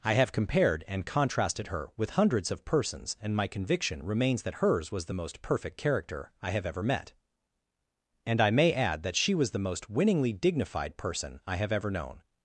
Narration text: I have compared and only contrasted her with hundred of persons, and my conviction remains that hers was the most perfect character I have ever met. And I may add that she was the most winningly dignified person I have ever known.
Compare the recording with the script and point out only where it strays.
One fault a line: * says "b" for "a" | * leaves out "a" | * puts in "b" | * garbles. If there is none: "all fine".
* leaves out "only"
* says "hundreds" for "hundred"